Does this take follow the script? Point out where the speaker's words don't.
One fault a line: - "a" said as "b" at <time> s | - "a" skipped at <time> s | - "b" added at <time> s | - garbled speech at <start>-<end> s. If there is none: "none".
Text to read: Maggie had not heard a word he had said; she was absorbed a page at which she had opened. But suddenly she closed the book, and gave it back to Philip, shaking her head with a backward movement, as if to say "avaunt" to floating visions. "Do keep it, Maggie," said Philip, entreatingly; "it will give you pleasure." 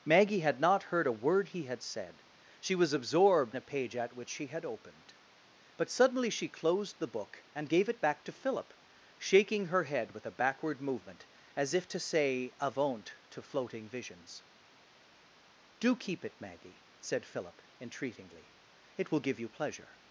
none